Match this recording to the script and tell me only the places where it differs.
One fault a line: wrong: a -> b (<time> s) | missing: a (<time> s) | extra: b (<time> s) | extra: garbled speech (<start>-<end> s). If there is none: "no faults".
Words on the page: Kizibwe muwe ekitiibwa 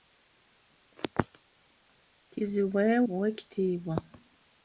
no faults